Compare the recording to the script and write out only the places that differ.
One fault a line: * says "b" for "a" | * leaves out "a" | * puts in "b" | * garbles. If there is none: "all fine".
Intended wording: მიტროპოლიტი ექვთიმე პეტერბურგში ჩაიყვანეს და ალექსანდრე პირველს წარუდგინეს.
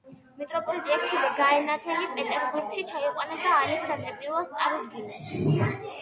* puts in "გაენათელი"